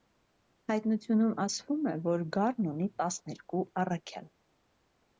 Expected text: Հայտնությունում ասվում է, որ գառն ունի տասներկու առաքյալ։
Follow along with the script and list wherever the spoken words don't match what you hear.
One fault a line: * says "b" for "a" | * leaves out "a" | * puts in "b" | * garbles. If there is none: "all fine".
all fine